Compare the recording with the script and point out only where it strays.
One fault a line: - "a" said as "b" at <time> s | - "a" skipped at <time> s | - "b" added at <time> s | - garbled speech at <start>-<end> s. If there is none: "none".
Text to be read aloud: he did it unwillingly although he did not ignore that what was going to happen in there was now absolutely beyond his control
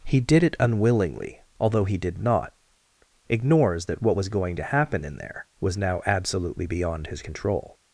- "ignore" said as "ignores" at 3.3 s